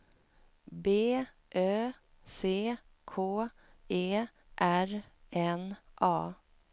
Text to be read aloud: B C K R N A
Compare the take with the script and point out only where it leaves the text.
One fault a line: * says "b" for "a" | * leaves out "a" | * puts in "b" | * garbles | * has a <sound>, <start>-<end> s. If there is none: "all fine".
* puts in "Ö"
* puts in "E"